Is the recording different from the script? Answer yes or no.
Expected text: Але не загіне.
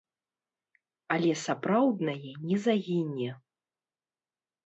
yes